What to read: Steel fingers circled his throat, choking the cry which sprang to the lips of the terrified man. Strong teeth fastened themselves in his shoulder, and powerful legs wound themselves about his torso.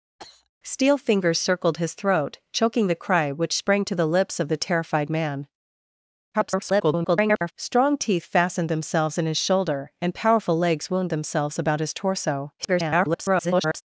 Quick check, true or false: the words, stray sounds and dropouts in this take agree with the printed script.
false